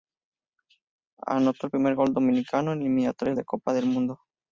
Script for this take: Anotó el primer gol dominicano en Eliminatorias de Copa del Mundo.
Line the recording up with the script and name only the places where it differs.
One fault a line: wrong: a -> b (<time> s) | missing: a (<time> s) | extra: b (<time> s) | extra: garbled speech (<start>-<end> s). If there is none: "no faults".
no faults